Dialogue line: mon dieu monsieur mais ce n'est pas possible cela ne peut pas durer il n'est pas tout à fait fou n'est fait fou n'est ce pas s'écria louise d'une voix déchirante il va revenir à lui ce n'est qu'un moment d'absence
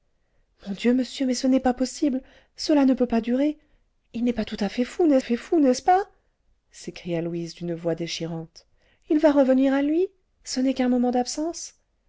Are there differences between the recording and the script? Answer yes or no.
no